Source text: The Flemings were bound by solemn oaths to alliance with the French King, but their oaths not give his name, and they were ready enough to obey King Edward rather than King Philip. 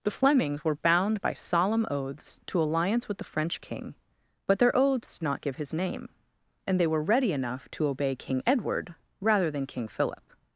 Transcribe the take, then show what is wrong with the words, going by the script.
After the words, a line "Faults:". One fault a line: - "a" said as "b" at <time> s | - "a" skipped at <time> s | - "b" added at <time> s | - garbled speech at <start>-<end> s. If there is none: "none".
The Flemings were bound by solemn oaths to alliance with the French King, but their oaths not give his name, and they were ready enough to obey King Edward rather than King Philip.
Faults:
none